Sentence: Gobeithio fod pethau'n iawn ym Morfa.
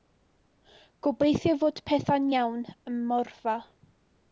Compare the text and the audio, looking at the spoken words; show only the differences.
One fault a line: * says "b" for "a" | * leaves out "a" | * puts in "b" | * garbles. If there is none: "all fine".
all fine